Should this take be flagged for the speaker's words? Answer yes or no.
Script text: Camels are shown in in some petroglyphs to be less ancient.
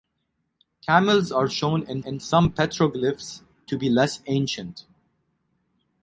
no